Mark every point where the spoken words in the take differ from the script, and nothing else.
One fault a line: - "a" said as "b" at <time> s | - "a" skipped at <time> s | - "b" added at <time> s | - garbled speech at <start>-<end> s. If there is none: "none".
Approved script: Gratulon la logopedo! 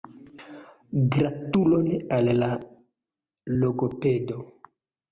- "al" added at 2.2 s